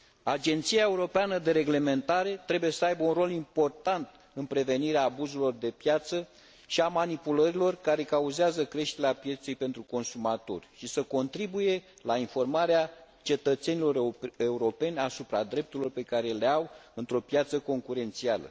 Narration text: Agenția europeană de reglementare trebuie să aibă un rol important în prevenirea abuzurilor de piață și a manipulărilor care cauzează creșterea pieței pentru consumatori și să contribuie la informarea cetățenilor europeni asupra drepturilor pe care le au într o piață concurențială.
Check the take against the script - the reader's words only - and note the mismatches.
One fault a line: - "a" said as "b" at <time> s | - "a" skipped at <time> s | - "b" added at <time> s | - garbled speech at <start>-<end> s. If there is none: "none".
none